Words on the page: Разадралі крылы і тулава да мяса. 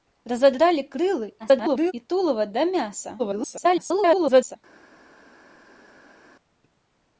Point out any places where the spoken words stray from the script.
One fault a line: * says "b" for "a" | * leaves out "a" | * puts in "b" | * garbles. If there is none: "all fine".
* garbles
* garbles